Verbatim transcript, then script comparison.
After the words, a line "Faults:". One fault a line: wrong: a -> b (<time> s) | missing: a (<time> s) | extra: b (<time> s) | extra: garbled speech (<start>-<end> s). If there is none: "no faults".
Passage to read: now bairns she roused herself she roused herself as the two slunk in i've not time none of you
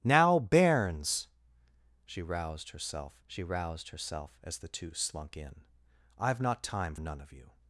now bairns she roused herself she roused herself as the two slunk in i've not time none of you
Faults:
no faults